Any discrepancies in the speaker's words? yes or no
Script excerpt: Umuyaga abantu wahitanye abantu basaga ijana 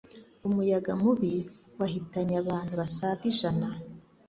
yes